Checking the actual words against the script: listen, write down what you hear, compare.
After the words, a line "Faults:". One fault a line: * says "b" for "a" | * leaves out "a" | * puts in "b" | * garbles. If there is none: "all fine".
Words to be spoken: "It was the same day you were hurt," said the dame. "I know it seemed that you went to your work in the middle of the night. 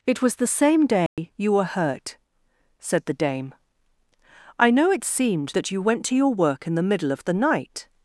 "It was the same day you were hurt," said the dame. "I know it seemed that you went to your work in the middle of the night.
Faults:
all fine